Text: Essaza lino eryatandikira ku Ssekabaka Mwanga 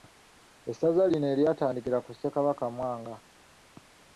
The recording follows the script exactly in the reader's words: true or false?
true